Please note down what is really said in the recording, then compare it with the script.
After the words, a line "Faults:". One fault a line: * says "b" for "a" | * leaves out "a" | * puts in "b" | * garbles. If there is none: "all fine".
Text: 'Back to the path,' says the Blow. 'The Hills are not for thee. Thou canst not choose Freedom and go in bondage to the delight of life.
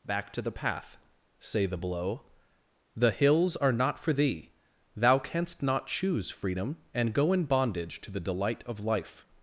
'Back to the path,' say the Blow. 'The Hills are not for thee. Thou canst not choose Freedom and go in bondage to the delight of life.
Faults:
* says "say" for "says"